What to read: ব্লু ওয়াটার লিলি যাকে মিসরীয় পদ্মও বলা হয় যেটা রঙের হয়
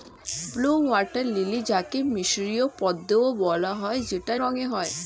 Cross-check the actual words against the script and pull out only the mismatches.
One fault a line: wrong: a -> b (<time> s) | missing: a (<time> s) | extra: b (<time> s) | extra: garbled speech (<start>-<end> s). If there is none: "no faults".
no faults